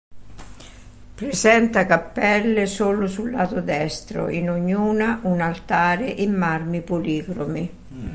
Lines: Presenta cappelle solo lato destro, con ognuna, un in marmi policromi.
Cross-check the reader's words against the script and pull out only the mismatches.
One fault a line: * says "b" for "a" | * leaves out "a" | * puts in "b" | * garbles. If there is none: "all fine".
* puts in "sul"
* says "in" for "con"
* puts in "altare"